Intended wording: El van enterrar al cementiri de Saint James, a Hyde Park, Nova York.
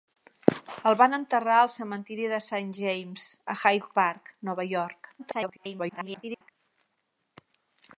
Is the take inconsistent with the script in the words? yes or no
yes